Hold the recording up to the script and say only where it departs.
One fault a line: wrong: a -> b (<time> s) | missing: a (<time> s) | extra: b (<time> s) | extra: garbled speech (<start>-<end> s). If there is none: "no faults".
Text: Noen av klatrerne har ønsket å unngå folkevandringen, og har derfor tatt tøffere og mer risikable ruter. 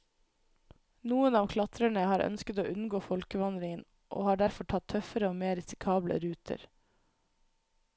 no faults